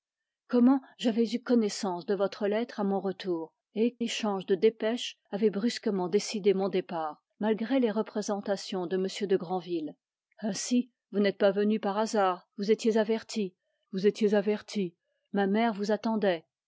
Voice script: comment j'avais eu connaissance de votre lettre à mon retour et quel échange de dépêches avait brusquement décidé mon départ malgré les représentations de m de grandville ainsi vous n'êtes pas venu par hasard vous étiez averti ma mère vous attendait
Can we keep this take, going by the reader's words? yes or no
no